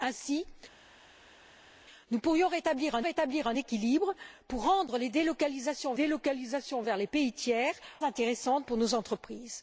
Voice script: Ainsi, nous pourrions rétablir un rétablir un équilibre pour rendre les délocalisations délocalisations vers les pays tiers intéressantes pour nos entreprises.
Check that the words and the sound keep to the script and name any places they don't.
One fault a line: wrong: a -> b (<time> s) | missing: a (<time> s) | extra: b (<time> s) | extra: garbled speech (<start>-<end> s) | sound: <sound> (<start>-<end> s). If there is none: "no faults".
no faults